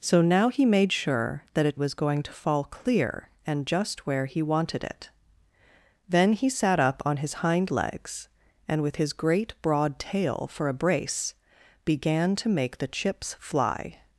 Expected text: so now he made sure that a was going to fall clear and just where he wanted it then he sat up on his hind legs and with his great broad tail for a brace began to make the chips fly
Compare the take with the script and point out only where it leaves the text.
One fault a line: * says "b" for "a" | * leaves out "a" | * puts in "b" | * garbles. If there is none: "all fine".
all fine